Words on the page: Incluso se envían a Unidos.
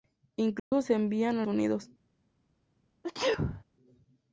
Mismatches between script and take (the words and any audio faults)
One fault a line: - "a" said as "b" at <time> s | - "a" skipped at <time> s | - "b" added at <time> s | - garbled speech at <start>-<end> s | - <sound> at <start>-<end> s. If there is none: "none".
- dropout at 0.6-0.7 s
- sneeze at 3.0-3.6 s